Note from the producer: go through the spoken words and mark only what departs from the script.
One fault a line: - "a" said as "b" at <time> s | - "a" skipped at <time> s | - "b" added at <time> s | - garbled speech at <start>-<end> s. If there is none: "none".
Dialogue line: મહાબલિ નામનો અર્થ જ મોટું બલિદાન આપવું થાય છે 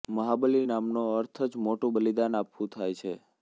none